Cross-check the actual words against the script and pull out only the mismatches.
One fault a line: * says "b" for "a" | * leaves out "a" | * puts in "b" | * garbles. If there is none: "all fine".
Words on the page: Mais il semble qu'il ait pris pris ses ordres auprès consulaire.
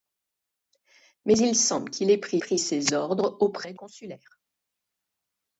all fine